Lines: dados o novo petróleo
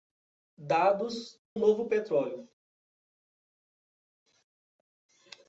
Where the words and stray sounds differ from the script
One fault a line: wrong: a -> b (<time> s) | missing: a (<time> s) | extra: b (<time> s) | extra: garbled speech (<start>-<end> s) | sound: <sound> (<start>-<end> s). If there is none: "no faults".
no faults